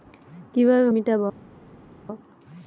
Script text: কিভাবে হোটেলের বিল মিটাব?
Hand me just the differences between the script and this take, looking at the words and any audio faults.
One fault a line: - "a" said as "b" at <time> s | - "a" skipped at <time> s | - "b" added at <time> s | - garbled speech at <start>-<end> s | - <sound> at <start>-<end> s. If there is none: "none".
- "হোটেলের বিল" skipped at 0.9 s